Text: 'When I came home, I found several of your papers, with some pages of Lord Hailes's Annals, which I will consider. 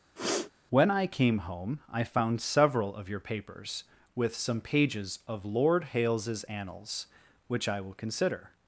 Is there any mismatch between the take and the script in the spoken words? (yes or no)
no